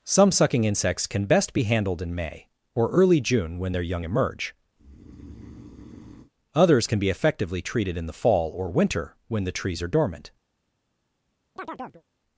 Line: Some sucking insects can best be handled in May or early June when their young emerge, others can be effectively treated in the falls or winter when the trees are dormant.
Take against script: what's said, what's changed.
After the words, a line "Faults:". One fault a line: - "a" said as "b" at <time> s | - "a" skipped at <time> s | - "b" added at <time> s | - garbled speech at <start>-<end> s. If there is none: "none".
Some sucking insects can best be handled in May or early June when their young emerge, others can be effectively treated in the fall or winter when the trees are dormant.
Faults:
- "falls" said as "fall" at 8.1 s